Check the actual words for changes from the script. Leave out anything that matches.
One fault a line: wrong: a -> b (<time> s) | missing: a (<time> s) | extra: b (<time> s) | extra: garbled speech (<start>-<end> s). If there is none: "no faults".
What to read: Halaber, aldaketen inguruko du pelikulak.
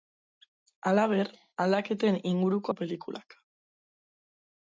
no faults